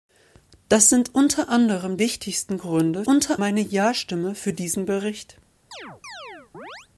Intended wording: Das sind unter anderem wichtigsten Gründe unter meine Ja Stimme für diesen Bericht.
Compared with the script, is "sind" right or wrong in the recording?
right